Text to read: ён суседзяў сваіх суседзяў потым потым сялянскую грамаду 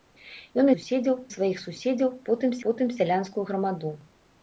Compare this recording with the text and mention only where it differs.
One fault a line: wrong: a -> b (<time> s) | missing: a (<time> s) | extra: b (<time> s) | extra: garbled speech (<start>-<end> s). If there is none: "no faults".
no faults